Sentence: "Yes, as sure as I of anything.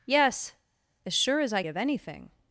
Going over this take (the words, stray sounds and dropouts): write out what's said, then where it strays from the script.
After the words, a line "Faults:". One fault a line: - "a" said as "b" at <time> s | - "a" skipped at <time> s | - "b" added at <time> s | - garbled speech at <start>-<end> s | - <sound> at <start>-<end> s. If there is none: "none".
"Yes, as sure as I of anything.
Faults:
none